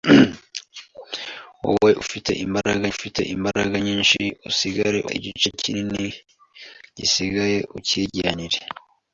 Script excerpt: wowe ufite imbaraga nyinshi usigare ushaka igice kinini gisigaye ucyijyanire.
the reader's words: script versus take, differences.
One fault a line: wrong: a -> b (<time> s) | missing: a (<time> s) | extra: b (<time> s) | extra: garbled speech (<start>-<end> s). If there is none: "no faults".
extra: ufite imbaraga (2.9 s)
missing: ushaka (5.0 s)